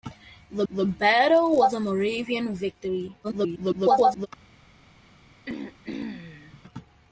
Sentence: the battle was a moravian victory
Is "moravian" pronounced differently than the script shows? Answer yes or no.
no